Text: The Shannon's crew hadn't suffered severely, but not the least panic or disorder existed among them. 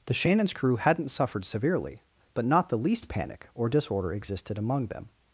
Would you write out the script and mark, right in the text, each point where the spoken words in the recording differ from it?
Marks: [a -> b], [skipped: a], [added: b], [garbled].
The Shannon's crew hadn't suffered severely, but not the least panic or disorder existed among them.